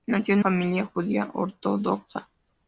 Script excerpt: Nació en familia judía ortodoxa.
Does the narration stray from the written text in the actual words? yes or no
no